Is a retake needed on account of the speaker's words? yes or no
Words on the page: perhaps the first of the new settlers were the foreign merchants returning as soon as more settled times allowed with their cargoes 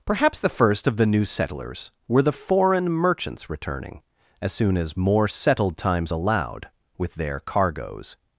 no